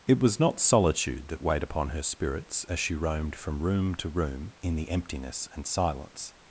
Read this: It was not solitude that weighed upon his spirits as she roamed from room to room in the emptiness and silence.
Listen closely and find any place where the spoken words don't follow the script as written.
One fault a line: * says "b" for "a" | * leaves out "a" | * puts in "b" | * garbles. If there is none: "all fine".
* says "her" for "his"